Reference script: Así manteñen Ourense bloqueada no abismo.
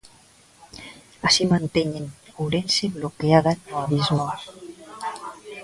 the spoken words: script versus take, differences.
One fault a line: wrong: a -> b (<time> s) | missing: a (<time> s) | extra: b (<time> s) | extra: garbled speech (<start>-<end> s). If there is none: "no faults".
no faults